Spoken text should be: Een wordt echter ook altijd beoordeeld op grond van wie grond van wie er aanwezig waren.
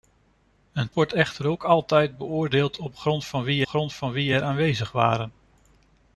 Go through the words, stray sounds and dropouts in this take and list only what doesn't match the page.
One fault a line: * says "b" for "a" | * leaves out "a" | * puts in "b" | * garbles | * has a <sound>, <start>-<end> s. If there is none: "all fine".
all fine